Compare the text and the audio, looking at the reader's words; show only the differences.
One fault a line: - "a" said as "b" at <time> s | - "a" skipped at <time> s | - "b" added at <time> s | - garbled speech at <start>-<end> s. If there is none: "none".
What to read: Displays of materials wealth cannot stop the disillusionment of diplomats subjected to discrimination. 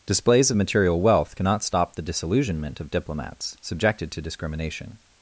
- "materials" said as "material" at 0.6 s